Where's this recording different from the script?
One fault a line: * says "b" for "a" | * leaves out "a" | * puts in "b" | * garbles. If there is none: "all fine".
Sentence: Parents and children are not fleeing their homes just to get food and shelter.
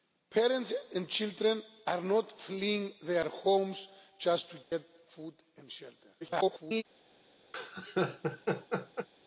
* garbles